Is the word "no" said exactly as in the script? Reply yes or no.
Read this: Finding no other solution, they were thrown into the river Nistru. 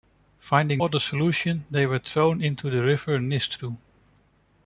no